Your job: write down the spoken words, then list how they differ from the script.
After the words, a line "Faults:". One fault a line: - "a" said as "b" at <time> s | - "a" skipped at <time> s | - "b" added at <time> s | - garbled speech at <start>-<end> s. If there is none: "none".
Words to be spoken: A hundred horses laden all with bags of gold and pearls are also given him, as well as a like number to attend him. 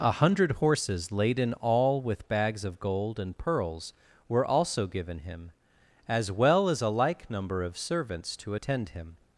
A hundred horses laden all with bags of gold and pearls were also given him, as well as a like number of servants to attend him.
Faults:
- "are" said as "were" at 4.3 s
- "of servants" added at 7.6 s